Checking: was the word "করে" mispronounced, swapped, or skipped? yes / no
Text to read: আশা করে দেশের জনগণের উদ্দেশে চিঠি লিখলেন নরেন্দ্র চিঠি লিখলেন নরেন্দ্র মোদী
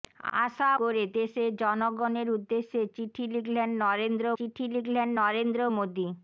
no